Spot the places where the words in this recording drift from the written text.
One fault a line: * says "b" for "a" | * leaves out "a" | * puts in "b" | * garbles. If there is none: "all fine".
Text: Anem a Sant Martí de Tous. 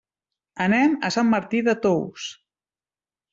all fine